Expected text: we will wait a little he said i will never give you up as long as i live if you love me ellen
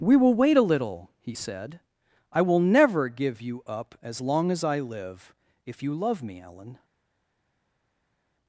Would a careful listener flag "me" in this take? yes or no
no